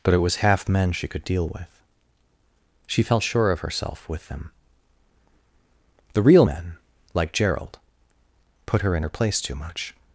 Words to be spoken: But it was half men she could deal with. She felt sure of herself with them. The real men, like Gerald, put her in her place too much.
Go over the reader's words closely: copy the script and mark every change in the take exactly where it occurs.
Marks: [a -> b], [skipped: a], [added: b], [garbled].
But it was half men she could deal with. She felt sure of herself with them. The real men, like Gerald, put her in her place too much.